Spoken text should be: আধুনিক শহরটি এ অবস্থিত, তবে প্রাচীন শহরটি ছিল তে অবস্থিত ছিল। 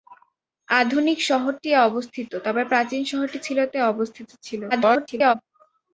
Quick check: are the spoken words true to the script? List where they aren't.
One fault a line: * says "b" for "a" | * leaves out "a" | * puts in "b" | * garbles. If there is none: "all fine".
* garbles